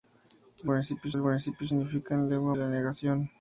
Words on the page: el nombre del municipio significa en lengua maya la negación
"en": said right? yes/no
yes